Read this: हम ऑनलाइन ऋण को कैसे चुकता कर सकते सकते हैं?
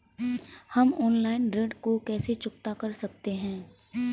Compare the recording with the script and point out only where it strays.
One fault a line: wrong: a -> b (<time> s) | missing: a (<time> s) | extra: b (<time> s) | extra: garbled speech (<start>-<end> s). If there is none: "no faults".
missing: सकते (3.3 s)